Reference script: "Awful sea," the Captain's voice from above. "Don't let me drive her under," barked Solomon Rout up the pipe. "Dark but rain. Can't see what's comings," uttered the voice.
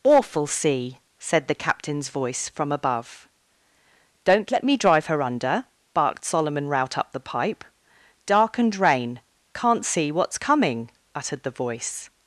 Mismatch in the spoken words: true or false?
true